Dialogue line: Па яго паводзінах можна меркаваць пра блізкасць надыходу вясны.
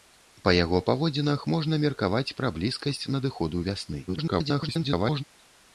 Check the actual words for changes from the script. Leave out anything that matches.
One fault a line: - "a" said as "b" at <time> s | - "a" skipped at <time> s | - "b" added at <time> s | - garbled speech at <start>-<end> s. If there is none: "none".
- garbled speech at 4.1-5.2 s